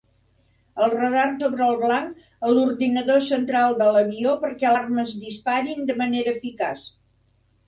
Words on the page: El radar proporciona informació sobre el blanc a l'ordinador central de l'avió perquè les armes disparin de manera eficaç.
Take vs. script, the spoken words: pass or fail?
fail